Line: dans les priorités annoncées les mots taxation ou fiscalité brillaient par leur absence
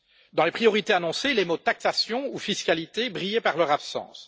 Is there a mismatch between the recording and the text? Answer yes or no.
no